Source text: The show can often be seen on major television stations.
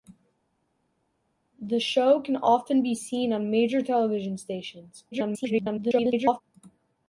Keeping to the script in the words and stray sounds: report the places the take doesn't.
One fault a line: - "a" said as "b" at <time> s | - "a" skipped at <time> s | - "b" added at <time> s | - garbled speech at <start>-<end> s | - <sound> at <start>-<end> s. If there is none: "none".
- garbled speech at 5.1-6.4 s